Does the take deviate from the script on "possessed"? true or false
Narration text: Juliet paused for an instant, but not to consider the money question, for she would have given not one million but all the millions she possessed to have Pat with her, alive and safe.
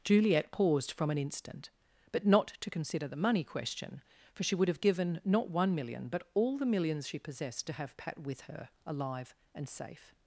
false